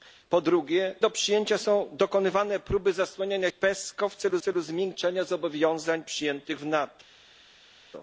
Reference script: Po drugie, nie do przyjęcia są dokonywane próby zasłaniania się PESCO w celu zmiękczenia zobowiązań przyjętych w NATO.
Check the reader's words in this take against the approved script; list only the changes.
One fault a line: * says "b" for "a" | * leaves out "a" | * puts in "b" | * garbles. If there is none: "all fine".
* leaves out "nie"
* leaves out "się"
* puts in "celu"